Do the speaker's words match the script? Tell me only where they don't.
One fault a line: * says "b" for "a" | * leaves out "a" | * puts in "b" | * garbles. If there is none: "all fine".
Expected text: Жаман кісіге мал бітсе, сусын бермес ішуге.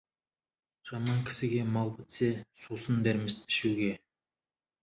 all fine